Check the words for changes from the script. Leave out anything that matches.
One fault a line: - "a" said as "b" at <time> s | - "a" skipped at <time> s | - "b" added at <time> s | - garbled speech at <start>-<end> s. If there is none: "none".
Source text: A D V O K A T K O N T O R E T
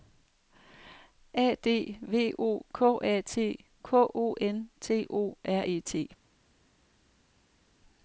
none